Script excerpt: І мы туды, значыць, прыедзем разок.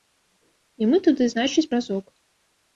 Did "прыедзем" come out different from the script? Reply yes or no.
yes